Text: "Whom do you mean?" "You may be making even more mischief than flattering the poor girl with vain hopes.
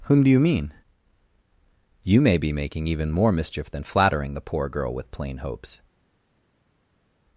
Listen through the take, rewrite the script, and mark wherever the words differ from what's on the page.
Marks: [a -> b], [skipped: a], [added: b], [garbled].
"Whom do you mean?" "You may be making even more mischief than flattering the poor girl with [vain -> plain] hopes.